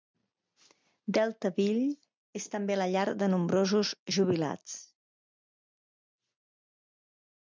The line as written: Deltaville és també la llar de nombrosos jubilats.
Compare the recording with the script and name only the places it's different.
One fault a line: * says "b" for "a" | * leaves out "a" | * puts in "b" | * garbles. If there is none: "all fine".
all fine